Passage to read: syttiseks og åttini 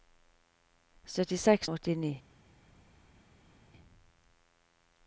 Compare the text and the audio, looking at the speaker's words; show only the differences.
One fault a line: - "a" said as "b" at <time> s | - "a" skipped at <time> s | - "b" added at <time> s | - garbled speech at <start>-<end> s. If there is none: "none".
none